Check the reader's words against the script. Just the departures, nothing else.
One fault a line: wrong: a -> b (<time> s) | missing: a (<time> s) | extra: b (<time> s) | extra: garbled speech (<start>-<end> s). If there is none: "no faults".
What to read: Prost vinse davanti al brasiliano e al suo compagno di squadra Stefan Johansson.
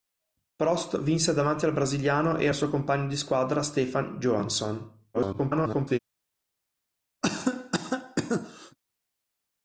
extra: garbled speech (5.1-6.0 s)